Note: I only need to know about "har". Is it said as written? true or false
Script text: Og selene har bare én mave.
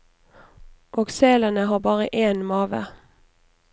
true